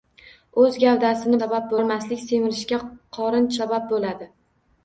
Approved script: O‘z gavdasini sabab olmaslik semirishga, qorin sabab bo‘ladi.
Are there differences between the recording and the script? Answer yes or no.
no